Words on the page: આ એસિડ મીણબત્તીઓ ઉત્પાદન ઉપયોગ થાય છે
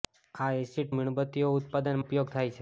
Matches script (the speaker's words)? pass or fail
pass